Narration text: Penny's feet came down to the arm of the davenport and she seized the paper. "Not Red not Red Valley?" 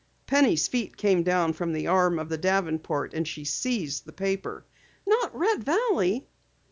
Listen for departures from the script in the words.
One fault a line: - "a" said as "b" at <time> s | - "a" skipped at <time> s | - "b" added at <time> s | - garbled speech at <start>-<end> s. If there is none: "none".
- "to" said as "from" at 1.5 s
- "not Red" skipped at 5.6 s